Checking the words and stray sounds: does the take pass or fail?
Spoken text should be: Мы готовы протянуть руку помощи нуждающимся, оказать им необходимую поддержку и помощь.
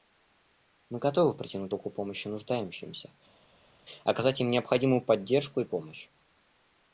pass